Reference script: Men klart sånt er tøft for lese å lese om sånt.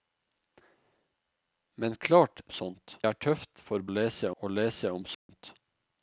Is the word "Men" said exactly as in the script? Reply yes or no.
yes